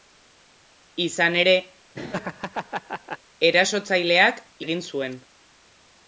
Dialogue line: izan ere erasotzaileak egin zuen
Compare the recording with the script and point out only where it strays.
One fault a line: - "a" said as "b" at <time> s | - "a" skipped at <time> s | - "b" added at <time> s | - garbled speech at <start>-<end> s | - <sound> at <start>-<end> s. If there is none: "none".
- laugh at 1.9-3.2 s